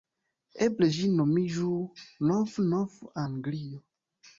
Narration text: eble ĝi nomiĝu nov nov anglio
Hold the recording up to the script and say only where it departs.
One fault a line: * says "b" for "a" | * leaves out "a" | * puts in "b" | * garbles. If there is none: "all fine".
all fine